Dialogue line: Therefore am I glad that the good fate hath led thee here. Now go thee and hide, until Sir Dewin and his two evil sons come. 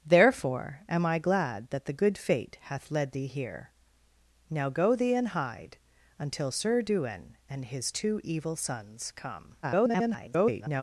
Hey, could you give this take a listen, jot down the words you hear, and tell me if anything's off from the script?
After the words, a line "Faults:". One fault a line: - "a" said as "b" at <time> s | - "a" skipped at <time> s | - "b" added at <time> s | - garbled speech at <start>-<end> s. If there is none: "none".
Therefore am I glad that the good fate hath led thee here. Now go thee and hide, until Sir Dewin and his two evil sons come. [garbled]
Faults:
- garbled speech at 9.6-10.8 s